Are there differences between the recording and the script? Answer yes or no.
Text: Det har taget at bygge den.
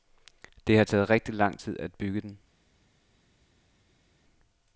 yes